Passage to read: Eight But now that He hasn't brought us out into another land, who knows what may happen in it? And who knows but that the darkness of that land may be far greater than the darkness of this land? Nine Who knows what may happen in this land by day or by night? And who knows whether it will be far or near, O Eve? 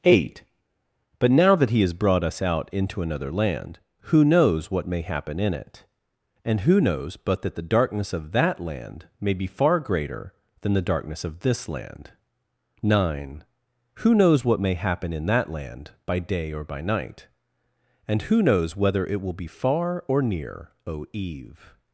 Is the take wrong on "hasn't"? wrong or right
wrong